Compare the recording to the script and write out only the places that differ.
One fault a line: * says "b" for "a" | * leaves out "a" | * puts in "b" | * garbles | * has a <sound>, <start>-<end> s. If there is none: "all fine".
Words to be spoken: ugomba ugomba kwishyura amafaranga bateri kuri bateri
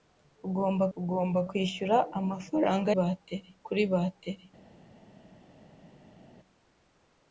all fine